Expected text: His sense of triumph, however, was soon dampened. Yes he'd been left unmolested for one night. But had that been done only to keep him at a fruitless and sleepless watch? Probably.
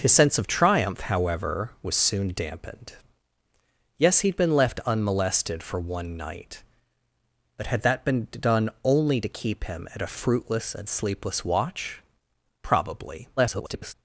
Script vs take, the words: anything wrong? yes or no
yes